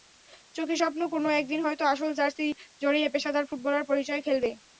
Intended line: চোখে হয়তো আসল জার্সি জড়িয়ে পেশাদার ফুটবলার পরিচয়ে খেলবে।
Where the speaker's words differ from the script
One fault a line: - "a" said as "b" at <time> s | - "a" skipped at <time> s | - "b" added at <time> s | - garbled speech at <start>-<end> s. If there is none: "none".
- "স্বপ্ন কোনো একদিন" added at 0.8 s